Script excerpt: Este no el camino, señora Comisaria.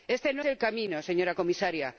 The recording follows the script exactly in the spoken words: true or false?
true